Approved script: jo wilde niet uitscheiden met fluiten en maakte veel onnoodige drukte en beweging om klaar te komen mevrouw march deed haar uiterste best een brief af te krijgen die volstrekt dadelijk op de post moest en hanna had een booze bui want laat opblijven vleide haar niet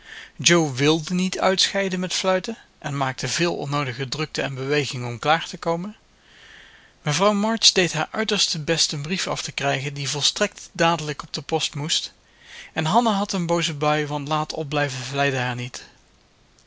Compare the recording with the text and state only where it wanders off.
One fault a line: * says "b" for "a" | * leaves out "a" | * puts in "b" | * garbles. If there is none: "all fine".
all fine